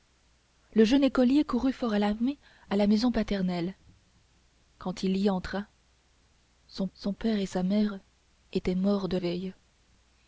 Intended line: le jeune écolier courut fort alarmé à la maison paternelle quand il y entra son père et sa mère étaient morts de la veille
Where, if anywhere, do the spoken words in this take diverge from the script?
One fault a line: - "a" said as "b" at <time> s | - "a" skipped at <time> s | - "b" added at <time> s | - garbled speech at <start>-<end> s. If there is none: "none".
- "son" added at 6.9 s
- "la" skipped at 9.2 s